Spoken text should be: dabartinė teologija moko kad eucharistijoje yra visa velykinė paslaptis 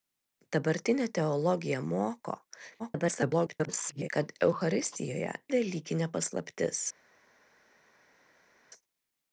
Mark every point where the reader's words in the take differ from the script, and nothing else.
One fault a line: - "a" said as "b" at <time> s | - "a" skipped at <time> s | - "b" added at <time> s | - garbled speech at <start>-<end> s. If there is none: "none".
- garbled speech at 2.8-4.1 s
- "yra visa" skipped at 5.4 s